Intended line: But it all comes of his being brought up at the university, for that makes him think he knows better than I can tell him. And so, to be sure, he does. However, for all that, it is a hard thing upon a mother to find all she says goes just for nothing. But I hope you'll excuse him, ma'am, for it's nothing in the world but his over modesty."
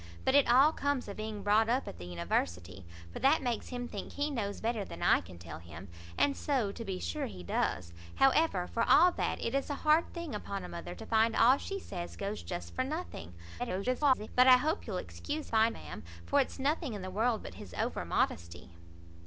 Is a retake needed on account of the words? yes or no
yes